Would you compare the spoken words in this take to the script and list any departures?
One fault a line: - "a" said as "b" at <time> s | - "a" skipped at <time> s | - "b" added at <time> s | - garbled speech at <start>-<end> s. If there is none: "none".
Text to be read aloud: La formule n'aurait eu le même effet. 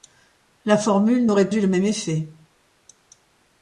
none